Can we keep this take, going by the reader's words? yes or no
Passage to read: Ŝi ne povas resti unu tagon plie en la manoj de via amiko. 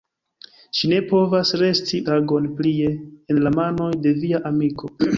no